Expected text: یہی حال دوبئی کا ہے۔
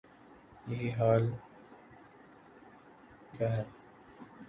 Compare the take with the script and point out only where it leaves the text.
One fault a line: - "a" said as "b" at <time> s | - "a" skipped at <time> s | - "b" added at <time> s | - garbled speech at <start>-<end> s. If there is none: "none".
- "دوبئی" skipped at 1.2 s